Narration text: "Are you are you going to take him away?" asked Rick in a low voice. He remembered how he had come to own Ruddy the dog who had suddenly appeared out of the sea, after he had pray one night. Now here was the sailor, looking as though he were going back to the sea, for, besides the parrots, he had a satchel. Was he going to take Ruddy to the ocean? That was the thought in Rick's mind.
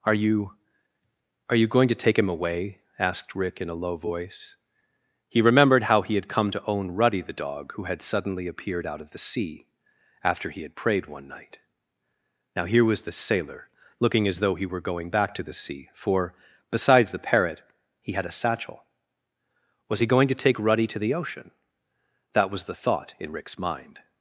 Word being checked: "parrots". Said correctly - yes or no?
no